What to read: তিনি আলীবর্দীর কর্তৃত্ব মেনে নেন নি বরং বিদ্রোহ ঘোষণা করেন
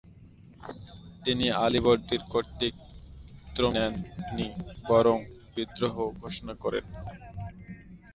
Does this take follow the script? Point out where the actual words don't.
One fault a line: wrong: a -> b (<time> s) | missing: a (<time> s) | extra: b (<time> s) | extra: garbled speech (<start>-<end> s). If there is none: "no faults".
missing: মেনে (3.6 s)